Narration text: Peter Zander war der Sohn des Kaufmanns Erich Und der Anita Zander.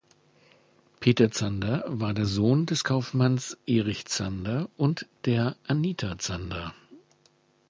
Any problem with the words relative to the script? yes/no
yes